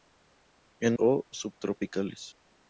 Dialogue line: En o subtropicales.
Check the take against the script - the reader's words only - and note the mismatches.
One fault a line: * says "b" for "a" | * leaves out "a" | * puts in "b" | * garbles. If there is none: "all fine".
all fine